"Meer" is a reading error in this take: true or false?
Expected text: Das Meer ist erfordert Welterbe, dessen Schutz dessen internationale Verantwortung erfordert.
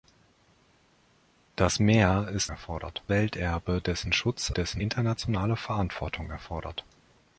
false